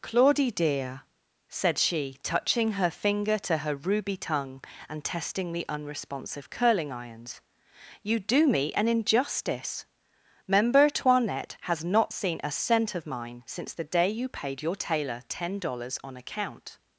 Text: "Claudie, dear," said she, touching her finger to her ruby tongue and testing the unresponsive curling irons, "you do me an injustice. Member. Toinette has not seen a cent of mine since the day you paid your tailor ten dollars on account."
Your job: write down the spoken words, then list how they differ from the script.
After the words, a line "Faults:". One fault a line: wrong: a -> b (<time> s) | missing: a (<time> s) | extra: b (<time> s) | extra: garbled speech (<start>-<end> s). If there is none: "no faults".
"Claudie, dear," said she, touching her finger to her ruby tongue and testing the unresponsive curling irons, "you do me an injustice. Member. Toinette has not seen a cent of mine since the day you paid your tailor ten dollars on account."
Faults:
no faults